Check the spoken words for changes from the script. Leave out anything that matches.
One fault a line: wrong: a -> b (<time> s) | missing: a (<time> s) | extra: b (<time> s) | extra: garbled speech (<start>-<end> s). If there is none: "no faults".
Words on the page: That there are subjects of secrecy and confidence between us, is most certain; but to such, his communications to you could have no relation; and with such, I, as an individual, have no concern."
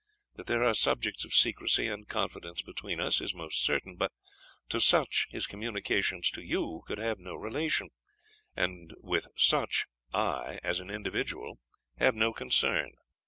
no faults